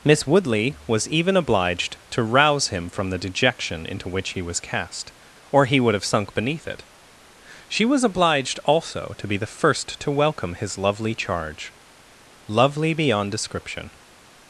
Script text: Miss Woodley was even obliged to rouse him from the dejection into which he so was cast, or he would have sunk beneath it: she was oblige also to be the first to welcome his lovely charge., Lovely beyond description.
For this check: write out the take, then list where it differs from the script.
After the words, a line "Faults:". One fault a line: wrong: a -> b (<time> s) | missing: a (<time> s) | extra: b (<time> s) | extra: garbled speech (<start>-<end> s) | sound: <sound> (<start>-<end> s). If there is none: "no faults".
Miss Woodley was even obliged to rouse him from the dejection into which he was cast, or he would have sunk beneath it: she was obliged also to be the first to welcome his lovely charge., Lovely beyond description.
Faults:
missing: so (4.4 s)
wrong: oblige -> obliged (8.0 s)